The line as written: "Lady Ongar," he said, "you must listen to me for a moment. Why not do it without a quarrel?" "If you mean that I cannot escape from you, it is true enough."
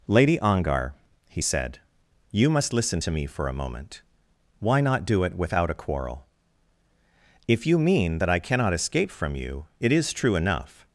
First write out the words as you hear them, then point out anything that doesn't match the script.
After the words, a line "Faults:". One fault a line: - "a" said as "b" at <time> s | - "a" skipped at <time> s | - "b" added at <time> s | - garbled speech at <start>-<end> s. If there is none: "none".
"Lady Ongar," he said, "you must listen to me for a moment. Why not do it without a quarrel?" "If you mean that I cannot escape from you, it is true enough."
Faults:
none